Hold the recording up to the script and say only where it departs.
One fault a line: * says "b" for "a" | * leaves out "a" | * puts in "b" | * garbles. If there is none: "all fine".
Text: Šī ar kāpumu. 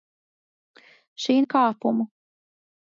all fine